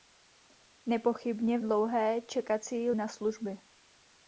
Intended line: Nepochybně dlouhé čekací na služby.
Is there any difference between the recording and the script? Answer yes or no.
no